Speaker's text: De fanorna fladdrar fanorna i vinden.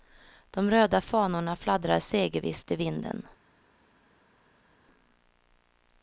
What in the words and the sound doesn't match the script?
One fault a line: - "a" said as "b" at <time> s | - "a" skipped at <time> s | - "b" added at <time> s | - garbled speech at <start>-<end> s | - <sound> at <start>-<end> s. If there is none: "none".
- "röda" added at 0.7 s
- "fanorna" said as "segervisst" at 2.0 s